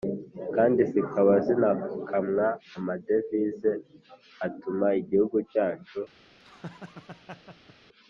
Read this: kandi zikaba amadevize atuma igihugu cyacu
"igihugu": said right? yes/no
yes